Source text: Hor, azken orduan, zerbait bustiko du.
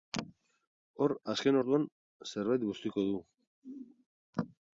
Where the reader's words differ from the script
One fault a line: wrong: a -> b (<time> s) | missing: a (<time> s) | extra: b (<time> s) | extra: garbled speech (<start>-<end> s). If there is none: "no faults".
no faults